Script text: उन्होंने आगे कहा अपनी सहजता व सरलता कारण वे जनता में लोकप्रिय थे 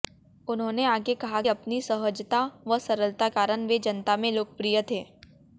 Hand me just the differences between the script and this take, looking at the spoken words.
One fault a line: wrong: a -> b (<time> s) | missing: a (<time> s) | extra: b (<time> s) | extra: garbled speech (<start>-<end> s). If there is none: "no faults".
no faults